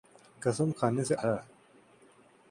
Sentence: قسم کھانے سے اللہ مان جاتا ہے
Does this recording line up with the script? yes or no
no